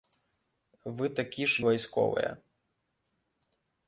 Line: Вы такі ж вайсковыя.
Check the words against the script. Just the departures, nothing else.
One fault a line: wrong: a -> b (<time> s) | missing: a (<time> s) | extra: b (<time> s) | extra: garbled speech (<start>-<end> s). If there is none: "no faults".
no faults